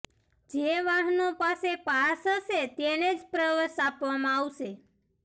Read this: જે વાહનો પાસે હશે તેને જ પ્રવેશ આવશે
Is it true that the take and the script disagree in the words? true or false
true